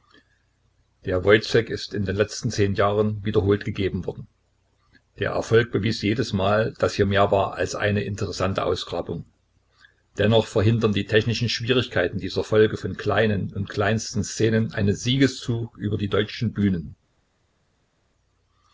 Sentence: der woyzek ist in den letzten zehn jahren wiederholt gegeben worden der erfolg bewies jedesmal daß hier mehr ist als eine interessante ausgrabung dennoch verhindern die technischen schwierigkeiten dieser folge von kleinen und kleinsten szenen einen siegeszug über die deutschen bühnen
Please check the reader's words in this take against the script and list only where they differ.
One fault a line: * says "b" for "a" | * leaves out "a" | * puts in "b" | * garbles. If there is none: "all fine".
* says "war" for "ist"